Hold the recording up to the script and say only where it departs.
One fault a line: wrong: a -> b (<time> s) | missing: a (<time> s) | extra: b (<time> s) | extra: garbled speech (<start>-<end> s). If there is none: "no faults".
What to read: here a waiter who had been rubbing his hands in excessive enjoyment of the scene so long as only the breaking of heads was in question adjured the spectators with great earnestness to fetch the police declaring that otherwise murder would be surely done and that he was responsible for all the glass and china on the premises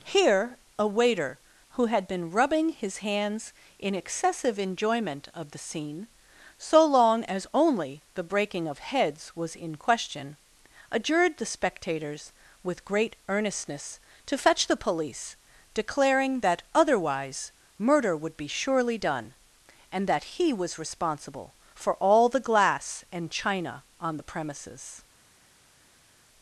no faults